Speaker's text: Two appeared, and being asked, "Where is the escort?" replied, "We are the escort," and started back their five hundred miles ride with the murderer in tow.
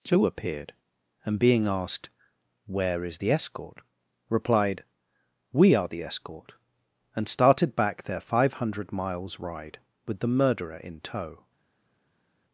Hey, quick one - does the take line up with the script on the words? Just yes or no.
yes